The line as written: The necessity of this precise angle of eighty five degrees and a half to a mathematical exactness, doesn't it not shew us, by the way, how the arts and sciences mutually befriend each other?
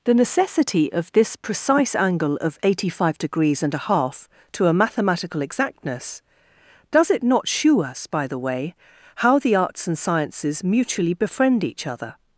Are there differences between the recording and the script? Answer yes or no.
yes